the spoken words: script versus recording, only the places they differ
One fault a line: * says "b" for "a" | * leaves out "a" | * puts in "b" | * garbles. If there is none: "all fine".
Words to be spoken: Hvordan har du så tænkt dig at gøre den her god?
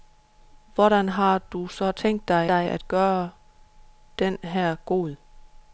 * puts in "dig"